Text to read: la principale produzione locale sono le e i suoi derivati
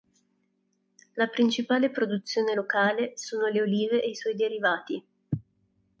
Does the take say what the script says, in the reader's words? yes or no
no